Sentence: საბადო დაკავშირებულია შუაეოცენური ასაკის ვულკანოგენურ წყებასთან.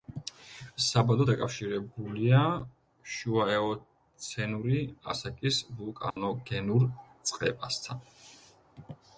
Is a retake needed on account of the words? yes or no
no